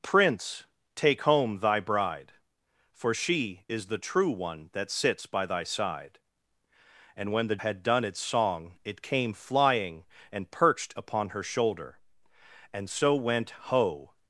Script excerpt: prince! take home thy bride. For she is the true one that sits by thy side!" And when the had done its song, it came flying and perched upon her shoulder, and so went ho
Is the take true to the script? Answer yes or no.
yes